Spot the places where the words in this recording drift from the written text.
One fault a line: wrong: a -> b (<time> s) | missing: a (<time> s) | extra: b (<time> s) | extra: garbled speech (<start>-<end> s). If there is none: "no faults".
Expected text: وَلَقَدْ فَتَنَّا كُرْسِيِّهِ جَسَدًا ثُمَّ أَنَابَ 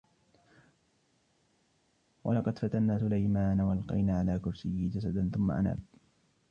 extra: سُلَيْمَانَ وَأَلْقَيْنَا عَلَى (3.0 s)